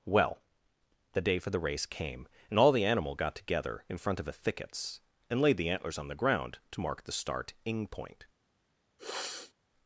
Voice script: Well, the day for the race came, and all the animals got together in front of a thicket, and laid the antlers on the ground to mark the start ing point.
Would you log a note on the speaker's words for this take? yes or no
yes